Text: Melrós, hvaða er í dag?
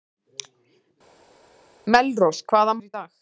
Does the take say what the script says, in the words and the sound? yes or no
yes